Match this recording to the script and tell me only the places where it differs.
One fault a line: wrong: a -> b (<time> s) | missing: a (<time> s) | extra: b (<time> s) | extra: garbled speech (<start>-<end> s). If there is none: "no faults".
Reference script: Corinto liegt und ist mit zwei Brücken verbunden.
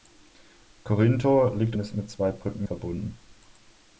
no faults